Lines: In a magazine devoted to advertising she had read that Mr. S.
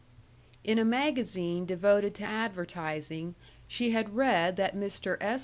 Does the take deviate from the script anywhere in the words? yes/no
no